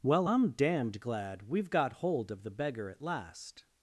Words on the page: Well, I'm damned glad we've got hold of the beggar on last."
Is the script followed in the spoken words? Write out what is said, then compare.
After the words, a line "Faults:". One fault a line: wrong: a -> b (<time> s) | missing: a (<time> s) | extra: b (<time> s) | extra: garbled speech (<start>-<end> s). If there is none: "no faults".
Well, I'm damned glad we've got hold of the beggar at last."
Faults:
wrong: on -> at (2.9 s)